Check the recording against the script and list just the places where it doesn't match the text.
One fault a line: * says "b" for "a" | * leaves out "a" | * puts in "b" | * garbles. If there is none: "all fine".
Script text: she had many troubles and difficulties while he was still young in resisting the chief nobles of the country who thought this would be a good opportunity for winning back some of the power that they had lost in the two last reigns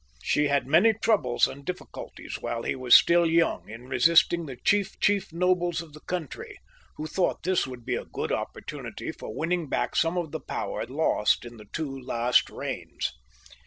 * puts in "chief"
* leaves out "that they had"